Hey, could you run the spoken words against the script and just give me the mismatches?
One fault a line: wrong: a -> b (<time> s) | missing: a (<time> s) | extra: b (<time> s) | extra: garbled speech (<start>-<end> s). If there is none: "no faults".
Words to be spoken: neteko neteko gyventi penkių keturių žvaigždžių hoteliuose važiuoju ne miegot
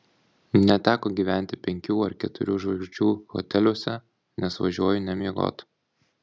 missing: neteko (1.1 s)
extra: ar (2.0 s)
extra: nes (4.5 s)